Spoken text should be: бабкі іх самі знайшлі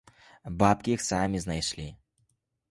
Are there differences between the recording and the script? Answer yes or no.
no